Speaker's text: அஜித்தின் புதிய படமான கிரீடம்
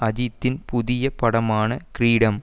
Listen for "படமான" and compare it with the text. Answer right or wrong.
right